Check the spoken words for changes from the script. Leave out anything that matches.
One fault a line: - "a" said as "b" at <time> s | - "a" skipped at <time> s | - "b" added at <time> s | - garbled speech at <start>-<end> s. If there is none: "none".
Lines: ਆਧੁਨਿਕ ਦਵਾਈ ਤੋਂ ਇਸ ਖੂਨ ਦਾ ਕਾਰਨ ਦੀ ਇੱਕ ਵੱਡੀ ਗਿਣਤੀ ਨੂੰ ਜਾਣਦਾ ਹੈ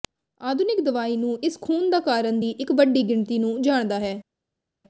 - "ਤੋਂ" said as "ਨੂੰ" at 1.2 s